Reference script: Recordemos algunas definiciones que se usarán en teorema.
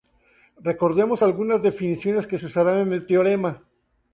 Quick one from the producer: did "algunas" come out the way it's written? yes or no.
yes